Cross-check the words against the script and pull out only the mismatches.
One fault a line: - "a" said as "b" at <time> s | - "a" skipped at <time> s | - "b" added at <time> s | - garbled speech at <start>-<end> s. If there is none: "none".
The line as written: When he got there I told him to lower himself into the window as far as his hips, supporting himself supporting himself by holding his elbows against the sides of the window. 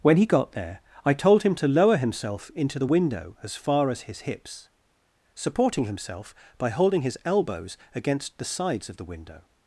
- "supporting himself" skipped at 6.3 s